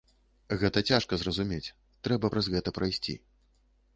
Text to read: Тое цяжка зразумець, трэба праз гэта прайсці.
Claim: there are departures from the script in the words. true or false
true